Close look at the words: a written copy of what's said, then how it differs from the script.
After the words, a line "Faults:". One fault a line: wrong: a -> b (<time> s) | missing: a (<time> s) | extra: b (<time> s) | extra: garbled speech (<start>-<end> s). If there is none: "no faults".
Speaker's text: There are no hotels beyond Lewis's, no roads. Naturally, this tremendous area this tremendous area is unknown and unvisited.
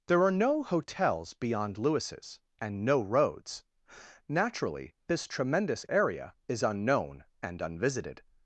There are no hotels beyond Lewis's, and no roads. Naturally, this tremendous area is unknown and unvisited.
Faults:
extra: and (2.6 s)
missing: this tremendous area (6.3 s)